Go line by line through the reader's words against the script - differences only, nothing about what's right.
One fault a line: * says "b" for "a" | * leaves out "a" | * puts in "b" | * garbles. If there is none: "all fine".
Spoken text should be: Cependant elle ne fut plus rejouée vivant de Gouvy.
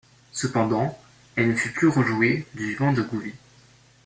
* puts in "du"